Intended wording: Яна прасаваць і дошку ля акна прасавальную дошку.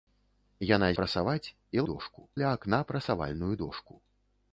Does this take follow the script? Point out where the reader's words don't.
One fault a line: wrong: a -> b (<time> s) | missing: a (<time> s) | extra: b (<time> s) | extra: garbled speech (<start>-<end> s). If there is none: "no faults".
no faults